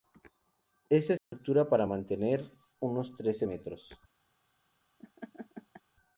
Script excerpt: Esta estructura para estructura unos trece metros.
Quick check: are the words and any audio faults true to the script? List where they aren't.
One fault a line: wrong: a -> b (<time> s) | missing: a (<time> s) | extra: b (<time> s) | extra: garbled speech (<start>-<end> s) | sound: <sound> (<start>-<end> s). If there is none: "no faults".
sound: dropout (1.2-1.3 s)
wrong: estructura -> mantener (1.8 s)
sound: laugh (5.0-5.8 s)